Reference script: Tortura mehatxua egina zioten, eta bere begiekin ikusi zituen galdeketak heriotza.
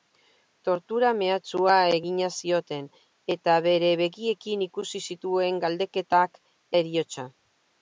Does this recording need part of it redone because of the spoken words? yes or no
no